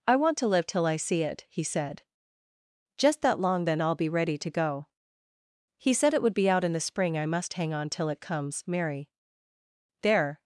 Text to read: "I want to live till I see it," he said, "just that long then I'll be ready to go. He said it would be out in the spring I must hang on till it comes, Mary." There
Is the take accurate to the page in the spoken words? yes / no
yes